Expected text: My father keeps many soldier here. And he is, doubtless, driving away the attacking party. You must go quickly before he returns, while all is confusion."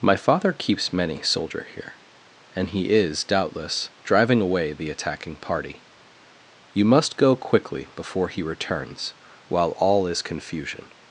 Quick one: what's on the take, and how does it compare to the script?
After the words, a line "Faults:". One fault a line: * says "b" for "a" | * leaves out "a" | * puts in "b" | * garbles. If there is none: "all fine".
My father keeps many soldier here. And he is, doubtless, driving away the attacking party. You must go quickly before he returns, while all is confusion."
Faults:
all fine